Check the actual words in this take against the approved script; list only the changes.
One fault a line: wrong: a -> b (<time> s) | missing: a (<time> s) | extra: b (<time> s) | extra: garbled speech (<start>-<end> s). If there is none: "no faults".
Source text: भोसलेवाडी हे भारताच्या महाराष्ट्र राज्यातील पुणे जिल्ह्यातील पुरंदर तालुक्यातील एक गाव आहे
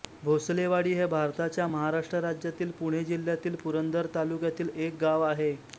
no faults